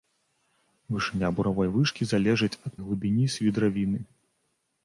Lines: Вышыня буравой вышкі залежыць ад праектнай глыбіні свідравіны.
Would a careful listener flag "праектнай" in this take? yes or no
yes